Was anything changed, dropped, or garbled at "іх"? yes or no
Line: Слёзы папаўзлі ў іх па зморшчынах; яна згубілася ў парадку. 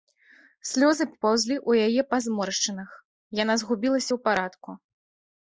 yes